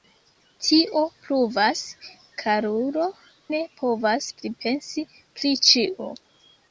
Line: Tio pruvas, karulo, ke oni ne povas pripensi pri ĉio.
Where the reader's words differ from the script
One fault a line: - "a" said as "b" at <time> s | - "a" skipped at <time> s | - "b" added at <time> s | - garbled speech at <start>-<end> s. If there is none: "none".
- "ke oni" skipped at 3.0 s